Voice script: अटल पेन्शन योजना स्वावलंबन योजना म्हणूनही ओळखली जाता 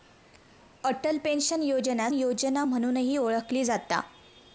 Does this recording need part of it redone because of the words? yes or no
yes